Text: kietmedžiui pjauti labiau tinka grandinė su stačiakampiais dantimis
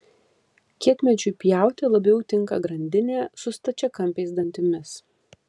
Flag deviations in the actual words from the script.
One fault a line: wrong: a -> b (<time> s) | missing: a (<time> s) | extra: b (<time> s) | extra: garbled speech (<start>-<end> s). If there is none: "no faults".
no faults